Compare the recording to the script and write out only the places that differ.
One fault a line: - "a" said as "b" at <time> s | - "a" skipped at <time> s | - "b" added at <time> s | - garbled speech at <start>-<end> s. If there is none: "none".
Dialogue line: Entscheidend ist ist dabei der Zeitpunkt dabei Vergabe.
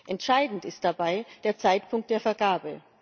- "ist" skipped at 0.8 s
- "dabei" said as "der" at 2.1 s